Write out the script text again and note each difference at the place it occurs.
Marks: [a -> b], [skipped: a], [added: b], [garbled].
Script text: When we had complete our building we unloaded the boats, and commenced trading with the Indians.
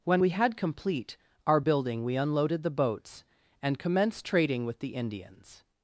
When we had complete our building we unloaded the boats, and commenced trading with the Indians.